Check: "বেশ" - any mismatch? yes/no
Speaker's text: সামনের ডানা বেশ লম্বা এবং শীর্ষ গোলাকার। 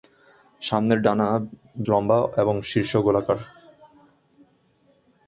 yes